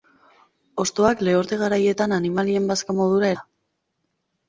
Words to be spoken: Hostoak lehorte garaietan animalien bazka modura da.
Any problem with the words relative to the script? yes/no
no